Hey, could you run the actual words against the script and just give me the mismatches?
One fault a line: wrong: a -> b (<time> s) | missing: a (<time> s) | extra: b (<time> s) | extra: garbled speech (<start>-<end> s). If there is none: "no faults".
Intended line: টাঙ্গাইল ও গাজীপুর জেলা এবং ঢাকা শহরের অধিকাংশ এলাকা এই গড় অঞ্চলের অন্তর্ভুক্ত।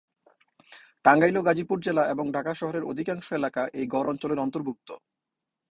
no faults